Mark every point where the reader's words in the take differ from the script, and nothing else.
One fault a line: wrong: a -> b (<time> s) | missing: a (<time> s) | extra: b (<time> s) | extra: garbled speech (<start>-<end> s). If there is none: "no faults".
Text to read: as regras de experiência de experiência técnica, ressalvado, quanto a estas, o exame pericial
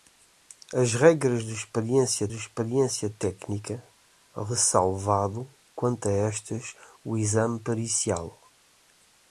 no faults